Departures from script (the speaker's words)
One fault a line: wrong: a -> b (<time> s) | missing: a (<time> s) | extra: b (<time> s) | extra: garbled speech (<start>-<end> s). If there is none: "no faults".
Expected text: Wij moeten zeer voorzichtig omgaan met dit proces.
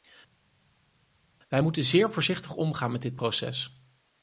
no faults